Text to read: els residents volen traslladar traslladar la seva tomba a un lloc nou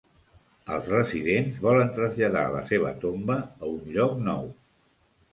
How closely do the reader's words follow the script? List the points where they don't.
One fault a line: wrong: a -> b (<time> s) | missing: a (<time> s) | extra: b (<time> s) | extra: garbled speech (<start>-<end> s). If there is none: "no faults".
missing: traslladar (2.5 s)